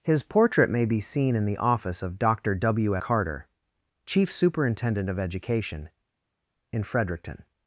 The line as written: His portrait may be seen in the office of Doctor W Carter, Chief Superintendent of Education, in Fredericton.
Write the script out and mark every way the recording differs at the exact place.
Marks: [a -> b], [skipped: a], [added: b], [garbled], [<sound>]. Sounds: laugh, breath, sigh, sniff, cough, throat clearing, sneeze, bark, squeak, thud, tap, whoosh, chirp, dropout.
His portrait may be seen in the office of Doctor W Carter, Chief Superintendent of Education, in Fredericton.